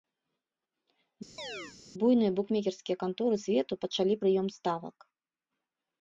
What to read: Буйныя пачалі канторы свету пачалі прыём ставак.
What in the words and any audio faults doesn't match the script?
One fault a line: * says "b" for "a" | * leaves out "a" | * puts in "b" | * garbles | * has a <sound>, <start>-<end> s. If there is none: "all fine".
* has a chirp, 1.4-1.8 s
* says "букмекерскія" for "пачалі"